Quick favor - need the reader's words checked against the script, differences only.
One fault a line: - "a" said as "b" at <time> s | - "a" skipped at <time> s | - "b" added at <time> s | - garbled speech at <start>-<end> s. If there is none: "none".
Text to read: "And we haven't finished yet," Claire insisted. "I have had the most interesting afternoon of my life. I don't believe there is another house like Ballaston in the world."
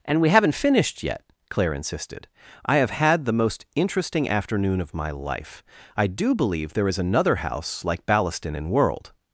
- "don't" said as "do" at 6.1 s
- "the" skipped at 8.7 s